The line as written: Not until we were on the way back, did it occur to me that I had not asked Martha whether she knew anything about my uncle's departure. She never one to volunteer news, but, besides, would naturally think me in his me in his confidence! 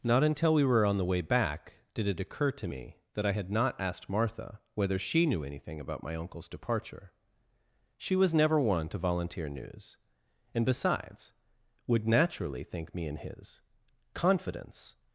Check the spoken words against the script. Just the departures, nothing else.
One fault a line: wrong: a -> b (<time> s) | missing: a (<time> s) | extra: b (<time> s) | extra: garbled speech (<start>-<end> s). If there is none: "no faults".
extra: was (8.1 s)
wrong: but -> and (10.5 s)
missing: me in his (13.6 s)